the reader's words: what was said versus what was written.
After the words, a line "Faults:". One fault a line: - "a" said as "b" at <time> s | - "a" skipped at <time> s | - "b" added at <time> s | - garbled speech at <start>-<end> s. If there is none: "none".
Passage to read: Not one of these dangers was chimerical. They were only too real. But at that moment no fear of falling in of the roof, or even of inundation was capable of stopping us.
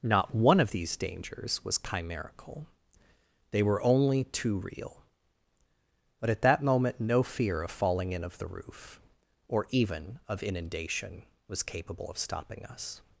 Not one of these dangers was chimerical. They were only too real. But at that moment no fear of falling in of the roof, or even of inundation was capable of stopping us.
Faults:
none